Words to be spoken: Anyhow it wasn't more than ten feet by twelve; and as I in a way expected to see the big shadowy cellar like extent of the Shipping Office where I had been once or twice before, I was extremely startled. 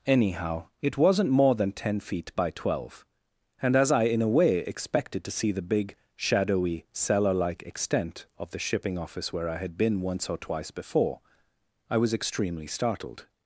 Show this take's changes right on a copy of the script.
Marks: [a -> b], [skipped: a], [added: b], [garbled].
Anyhow it wasn't more than ten feet by twelve; and as I in a way expected to see the big shadowy cellar like extent of the Shipping Office where I had been once or twice before, I was extremely startled.